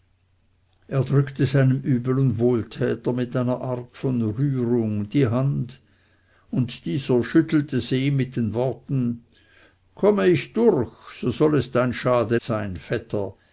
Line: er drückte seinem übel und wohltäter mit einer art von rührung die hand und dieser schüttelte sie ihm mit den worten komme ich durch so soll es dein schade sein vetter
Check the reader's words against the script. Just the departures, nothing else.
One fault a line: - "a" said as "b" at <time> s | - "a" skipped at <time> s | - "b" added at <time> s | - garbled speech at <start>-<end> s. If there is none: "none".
none